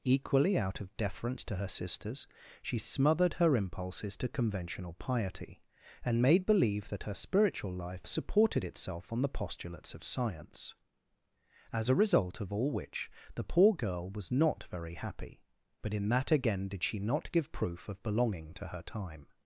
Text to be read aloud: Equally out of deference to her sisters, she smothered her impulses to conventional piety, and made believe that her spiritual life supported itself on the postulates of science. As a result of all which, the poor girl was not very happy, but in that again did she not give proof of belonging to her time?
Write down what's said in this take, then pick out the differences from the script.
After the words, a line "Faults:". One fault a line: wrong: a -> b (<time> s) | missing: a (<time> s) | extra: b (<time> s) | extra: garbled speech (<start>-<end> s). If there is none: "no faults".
Equally out of deference to her sisters, she smothered her impulses to conventional piety, and made believe that her spiritual life supported itself on the postulates of science. As a result of all which, the poor girl was not very happy, but in that again did she not give proof of belonging to her time?
Faults:
no faults